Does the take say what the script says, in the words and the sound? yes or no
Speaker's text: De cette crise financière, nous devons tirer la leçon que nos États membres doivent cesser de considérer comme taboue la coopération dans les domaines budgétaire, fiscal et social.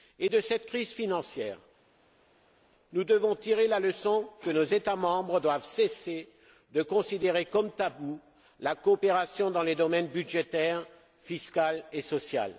yes